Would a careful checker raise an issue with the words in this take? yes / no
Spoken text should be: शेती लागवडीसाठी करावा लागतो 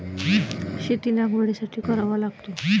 no